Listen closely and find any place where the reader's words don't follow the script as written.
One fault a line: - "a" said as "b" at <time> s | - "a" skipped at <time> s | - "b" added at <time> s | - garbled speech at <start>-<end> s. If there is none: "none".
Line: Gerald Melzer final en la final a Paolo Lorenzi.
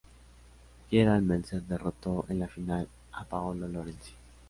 - "final" said as "derrotó" at 1.6 s